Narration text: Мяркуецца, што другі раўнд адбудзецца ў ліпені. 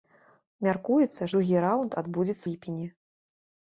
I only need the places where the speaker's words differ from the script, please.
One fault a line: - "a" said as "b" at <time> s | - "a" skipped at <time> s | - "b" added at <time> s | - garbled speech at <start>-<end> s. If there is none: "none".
- "што" skipped at 1.3 s
- "ў" skipped at 2.4 s